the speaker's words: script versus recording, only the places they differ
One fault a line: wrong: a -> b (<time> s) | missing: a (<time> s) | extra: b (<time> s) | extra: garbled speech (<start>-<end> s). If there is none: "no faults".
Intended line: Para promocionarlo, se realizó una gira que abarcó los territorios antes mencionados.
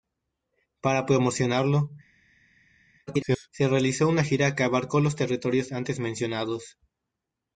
extra: garbled speech (3.1-3.5 s)